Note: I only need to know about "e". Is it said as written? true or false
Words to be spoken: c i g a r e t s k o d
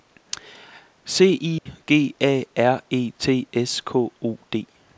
true